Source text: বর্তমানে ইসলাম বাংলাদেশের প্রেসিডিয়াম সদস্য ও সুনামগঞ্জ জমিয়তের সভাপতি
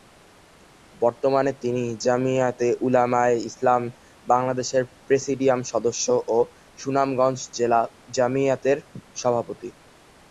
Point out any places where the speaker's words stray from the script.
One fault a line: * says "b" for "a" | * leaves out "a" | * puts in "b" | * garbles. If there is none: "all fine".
* puts in "তিনি জমিয়তে উলামায়ে"
* puts in "জেলা"